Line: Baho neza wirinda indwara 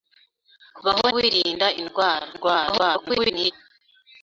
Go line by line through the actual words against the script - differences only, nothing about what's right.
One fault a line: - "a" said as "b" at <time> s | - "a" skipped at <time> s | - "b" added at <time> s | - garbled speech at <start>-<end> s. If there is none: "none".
- "neza" skipped at 1.1 s
- garbled speech at 2.3-3.5 s